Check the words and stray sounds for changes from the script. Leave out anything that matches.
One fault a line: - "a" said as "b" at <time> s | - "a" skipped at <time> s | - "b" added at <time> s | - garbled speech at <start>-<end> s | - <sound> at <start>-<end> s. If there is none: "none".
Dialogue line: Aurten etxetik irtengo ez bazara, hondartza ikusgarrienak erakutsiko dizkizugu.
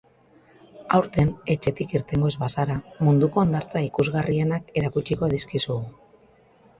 - "munduko" added at 3.1 s